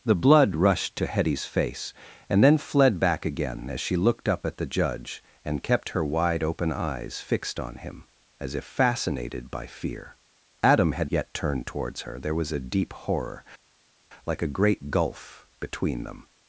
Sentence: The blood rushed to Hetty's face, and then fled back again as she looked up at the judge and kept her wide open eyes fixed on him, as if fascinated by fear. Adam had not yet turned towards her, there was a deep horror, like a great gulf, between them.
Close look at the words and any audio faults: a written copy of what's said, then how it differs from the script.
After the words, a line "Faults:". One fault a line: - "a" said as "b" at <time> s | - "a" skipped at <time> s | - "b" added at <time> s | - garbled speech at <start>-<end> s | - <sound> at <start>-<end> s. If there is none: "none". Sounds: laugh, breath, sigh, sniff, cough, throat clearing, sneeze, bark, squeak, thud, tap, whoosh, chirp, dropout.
The blood rushed to Hetty's face, and then fled back again as she looked up at the judge and kept her wide open eyes fixed on him, as if fascinated by fear. Adam had yet turned towards her, there was a deep horror, like a great gulf, between them.
Faults:
- "not" skipped at 11.1 s